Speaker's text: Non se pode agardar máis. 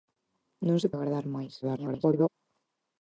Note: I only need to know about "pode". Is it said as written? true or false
false